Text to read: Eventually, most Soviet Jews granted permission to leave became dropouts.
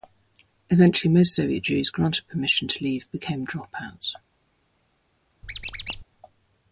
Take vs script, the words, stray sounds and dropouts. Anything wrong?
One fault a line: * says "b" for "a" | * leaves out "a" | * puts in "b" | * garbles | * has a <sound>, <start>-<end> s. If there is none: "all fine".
* has a squeak, 5.4-6.0 s